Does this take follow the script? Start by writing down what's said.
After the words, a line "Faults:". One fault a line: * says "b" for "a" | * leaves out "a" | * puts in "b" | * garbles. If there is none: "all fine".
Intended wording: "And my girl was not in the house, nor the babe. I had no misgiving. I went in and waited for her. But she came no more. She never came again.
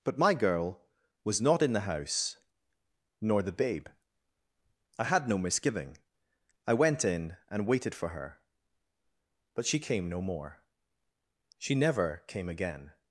"But my girl was not in the house, nor the babe. I had no misgiving. I went in and waited for her. But she came no more. She never came again.
Faults:
* says "But" for "And"